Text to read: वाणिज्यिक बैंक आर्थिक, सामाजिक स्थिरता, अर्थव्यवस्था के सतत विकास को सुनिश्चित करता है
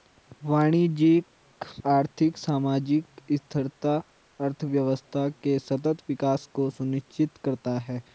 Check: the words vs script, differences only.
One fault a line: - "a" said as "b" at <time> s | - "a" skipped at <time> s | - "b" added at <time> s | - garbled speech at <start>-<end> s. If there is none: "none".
- "बैंक" skipped at 1.6 s